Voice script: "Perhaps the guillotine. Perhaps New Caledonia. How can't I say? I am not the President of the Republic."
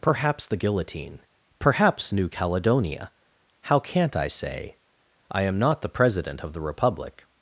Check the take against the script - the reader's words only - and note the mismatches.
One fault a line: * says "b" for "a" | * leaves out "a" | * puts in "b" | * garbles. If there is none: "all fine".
all fine